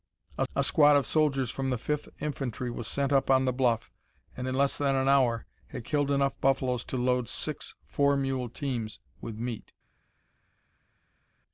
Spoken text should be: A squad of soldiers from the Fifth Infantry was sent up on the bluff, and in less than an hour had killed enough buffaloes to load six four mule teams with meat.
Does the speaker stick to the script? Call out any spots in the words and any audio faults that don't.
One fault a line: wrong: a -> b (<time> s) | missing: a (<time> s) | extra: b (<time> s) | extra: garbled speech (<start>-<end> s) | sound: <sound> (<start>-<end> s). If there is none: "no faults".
extra: a (0.5 s)